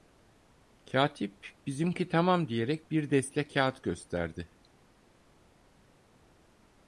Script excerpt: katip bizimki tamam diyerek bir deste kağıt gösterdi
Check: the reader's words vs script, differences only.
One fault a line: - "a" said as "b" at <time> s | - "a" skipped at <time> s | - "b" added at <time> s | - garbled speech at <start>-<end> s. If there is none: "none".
none